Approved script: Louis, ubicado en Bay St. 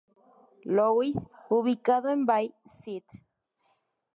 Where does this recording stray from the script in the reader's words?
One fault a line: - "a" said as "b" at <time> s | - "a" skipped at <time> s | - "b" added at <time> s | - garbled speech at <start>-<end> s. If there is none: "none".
none